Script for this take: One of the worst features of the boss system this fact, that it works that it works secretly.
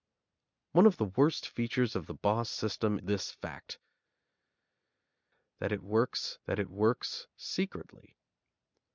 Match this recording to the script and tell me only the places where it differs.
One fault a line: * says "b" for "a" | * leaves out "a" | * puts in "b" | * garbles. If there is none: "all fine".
all fine